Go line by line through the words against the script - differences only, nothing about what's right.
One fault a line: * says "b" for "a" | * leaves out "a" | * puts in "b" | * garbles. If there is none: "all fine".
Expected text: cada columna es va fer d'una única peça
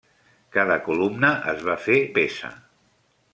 * leaves out "d'una única"